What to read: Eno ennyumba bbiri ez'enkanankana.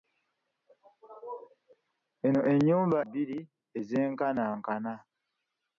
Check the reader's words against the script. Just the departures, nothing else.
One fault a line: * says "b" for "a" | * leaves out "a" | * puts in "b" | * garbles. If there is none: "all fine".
all fine